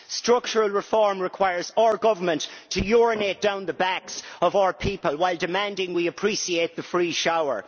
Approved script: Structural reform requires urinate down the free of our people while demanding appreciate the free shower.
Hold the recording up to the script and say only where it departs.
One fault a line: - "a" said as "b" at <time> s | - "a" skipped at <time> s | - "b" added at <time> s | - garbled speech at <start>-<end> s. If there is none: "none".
- "our government to" added at 1.8 s
- "free" said as "backs" at 3.7 s
- "we" added at 5.9 s